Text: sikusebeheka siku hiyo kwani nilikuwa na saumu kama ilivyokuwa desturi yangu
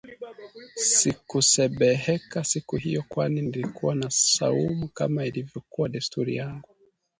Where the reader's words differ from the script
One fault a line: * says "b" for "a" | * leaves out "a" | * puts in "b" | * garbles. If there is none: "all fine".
all fine